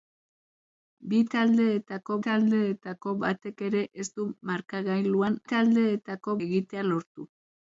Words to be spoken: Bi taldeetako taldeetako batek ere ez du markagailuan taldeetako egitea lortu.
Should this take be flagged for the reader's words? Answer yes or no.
no